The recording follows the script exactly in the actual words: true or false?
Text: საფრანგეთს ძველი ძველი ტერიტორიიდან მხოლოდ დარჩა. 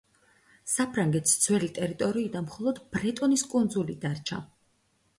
false